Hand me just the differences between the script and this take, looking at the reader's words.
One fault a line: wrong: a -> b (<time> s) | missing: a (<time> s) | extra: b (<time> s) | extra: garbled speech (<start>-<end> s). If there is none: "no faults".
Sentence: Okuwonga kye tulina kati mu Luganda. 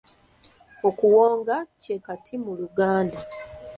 missing: tulina (1.9 s)